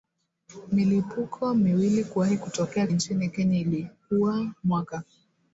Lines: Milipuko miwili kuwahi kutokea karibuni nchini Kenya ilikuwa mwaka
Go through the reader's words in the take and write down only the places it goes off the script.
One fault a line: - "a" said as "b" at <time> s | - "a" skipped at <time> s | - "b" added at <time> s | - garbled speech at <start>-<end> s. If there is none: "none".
- "karibuni" skipped at 2.9 s